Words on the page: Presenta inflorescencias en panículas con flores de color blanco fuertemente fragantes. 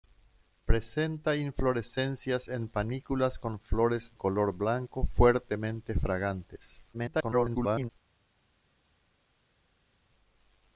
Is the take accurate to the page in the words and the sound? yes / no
no